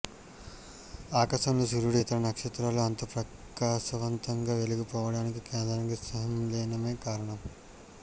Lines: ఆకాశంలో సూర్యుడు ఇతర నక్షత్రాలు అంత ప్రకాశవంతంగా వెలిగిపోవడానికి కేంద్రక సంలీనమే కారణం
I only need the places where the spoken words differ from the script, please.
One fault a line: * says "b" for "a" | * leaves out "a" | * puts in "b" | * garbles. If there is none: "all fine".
all fine